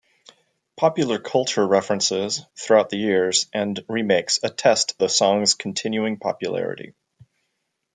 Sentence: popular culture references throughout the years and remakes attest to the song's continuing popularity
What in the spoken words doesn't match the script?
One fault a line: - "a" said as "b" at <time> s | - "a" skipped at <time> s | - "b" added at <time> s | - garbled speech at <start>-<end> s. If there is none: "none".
- "to" skipped at 5.0 s